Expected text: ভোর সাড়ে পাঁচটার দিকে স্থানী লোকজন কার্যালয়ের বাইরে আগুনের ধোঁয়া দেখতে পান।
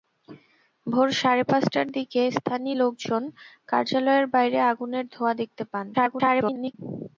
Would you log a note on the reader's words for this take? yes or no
yes